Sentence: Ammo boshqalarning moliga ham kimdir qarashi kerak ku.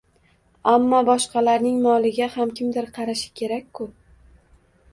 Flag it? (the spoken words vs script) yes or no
no